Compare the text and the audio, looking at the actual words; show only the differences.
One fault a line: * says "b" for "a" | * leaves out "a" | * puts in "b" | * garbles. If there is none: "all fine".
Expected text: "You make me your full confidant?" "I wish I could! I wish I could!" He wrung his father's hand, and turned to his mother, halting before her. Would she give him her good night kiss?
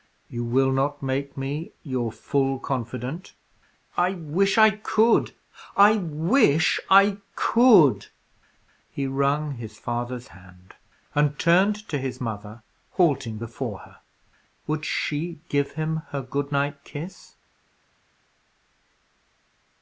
* puts in "will not"